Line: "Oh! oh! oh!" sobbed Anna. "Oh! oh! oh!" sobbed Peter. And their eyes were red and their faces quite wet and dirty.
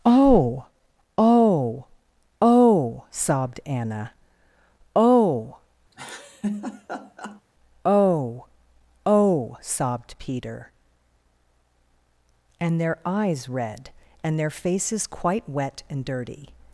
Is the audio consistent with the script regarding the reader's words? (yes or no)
no